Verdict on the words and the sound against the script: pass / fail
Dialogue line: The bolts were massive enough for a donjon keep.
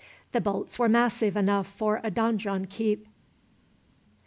pass